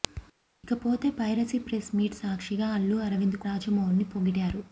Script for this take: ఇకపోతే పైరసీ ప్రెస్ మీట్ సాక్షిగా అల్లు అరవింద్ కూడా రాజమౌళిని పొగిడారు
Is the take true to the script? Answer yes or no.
no